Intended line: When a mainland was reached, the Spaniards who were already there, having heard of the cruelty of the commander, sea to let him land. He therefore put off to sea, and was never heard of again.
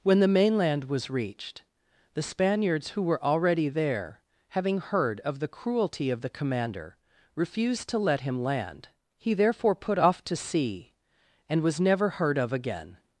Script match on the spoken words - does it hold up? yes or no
no